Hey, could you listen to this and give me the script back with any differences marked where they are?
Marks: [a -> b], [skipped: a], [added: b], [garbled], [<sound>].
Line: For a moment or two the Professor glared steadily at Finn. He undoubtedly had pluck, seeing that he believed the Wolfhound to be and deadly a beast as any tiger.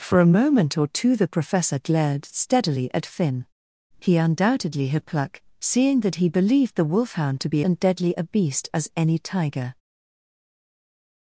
For a moment or two the Professor glared steadily at Finn. He undoubtedly had pluck, seeing that he believed the Wolfhound to be and deadly a beast as any tiger.